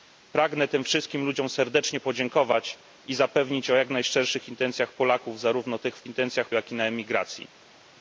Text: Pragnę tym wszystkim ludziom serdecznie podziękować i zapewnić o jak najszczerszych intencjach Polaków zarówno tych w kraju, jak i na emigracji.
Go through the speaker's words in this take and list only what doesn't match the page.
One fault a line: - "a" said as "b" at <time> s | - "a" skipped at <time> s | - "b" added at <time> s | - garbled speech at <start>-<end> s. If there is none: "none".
- "kraju" said as "intencjach" at 6.1 s